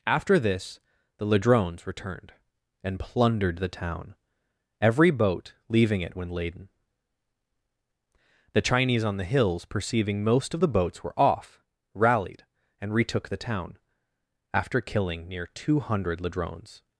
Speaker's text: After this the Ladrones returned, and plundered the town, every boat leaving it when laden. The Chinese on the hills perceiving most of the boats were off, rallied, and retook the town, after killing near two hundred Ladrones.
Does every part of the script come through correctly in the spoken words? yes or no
yes